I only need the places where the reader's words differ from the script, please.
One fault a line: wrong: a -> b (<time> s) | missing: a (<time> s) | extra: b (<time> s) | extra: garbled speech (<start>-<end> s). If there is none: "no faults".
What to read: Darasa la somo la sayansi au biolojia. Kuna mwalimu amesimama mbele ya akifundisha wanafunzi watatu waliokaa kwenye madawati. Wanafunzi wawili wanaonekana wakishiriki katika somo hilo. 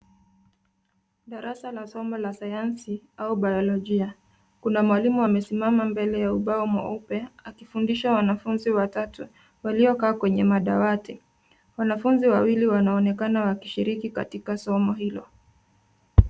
extra: ubao mweupe (6.3 s)